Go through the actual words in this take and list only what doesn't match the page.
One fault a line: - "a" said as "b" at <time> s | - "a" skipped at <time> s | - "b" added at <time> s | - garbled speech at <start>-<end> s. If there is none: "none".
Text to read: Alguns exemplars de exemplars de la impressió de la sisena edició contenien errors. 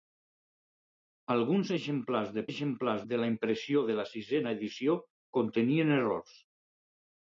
none